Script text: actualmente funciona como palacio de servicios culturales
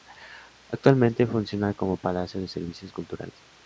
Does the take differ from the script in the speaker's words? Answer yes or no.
no